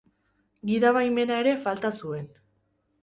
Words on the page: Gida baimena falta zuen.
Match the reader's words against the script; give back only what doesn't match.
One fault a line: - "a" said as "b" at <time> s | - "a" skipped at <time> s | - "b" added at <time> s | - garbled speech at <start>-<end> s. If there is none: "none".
- "ere" added at 1.4 s